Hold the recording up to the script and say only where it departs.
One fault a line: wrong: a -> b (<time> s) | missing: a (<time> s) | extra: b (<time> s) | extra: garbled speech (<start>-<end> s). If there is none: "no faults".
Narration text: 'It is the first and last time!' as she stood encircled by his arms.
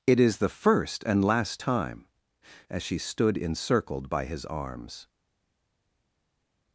no faults